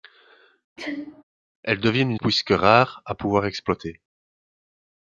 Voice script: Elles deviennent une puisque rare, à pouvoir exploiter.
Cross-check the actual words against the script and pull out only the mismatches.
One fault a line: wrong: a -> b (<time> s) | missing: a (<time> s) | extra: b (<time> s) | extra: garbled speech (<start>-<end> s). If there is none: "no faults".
no faults